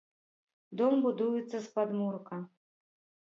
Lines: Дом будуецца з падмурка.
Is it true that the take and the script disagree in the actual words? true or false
false